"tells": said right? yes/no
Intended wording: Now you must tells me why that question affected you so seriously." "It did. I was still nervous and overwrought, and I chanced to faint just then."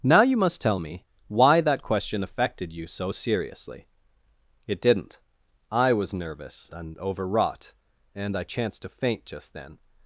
no